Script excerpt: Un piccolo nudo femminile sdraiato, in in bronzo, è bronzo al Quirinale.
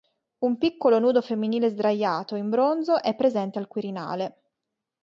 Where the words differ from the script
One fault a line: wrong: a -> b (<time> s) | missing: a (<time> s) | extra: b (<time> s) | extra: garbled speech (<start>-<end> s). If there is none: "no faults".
missing: in (2.5 s)
wrong: bronzo -> presente (3.1 s)